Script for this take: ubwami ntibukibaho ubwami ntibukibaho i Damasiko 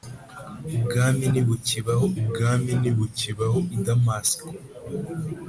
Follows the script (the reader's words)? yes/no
yes